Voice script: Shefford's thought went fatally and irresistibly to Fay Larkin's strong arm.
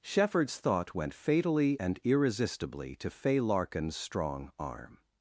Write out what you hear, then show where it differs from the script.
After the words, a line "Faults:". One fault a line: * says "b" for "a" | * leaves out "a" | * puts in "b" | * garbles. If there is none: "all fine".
Shefford's thought went fatally and irresistibly to Fay Larkin's strong arm.
Faults:
all fine